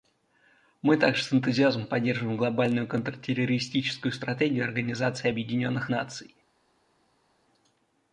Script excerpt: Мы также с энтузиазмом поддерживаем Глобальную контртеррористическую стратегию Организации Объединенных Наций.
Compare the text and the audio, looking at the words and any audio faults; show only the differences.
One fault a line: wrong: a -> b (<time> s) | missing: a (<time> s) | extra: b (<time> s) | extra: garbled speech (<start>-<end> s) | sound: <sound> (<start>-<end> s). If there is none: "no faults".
no faults